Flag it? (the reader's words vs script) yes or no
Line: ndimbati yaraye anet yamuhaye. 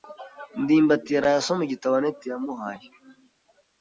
yes